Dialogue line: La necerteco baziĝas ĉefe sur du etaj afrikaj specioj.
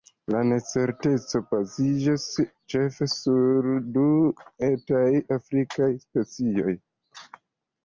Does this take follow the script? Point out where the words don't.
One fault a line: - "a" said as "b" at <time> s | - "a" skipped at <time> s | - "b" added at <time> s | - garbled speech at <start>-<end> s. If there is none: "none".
none